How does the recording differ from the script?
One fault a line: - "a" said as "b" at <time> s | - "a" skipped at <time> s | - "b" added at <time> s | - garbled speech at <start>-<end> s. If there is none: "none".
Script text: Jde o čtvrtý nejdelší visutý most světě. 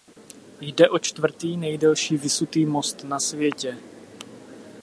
- "na" added at 3.0 s